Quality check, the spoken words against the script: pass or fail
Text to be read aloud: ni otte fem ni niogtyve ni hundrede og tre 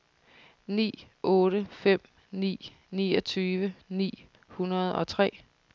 pass